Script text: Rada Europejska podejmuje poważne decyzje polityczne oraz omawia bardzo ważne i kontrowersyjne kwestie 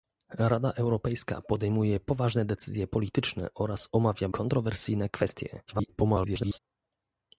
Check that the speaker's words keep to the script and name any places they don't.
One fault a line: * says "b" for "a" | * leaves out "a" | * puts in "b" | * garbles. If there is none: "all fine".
* leaves out "bardzo ważne i"
* garbles